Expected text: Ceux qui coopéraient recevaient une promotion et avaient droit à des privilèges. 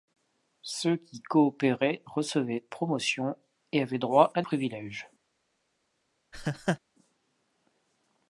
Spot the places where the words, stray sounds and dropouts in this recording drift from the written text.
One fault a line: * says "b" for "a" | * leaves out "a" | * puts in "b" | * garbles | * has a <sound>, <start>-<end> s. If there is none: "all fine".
* leaves out "une"
* leaves out "des"
* has a laugh, 6.3-6.8 s